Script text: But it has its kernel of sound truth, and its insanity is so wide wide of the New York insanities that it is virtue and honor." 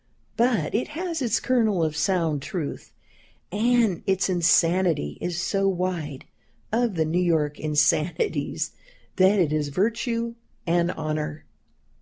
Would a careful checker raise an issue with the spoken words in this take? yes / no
yes